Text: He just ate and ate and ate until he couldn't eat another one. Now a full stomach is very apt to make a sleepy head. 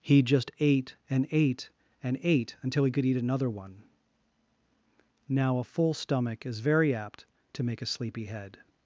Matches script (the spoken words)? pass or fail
fail